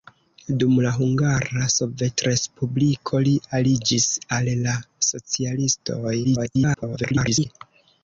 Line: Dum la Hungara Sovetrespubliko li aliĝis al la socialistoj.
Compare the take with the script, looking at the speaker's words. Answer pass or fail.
fail